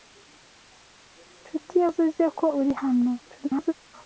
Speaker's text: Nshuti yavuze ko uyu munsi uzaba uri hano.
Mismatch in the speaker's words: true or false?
true